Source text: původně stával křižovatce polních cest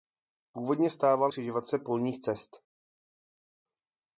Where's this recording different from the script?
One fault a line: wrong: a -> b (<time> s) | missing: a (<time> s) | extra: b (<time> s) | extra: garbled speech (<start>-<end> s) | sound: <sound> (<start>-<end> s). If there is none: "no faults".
no faults